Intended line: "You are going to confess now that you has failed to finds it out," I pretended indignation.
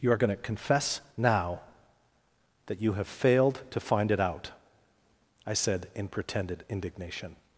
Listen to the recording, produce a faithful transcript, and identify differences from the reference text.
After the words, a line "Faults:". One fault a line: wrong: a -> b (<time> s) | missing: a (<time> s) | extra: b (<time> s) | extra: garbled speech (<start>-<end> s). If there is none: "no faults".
"You are going to confess now that you have failed to find it out," I said in pretended indignation.
Faults:
wrong: has -> have (2.9 s)
wrong: finds -> find (3.8 s)
extra: said in (5.5 s)